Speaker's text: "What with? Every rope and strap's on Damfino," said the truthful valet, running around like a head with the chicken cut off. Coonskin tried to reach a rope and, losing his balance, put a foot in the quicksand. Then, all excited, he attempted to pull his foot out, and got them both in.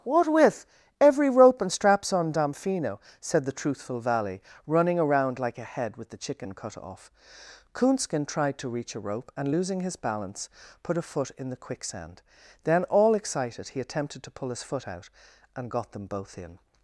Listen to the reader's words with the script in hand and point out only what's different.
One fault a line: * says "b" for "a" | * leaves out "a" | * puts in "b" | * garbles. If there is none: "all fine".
* says "valley" for "valet"